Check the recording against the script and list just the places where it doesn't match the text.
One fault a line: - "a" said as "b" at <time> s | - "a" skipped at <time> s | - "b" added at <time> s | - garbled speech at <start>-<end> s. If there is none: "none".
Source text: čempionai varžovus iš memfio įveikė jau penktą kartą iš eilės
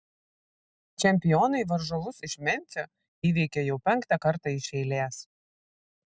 none